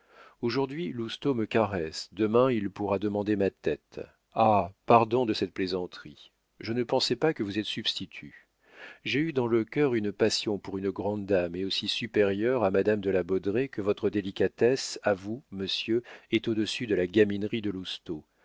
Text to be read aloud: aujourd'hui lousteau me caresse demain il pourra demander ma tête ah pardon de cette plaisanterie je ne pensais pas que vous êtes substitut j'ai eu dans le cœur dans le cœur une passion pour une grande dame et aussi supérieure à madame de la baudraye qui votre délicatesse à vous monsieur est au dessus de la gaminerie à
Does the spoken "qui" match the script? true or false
false